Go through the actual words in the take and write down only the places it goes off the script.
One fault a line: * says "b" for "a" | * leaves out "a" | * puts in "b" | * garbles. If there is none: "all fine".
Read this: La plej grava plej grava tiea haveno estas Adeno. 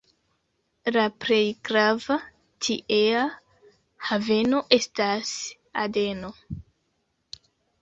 * leaves out "plej grava"